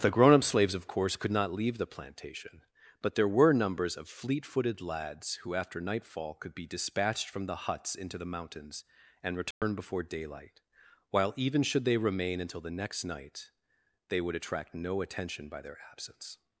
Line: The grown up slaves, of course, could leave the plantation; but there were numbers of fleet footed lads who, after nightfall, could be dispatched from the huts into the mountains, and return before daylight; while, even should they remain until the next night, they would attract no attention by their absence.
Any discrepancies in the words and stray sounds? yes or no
yes